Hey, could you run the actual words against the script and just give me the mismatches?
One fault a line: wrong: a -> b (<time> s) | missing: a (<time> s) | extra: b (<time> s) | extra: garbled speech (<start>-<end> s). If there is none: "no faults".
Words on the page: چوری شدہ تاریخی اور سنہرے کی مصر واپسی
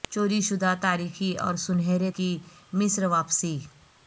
no faults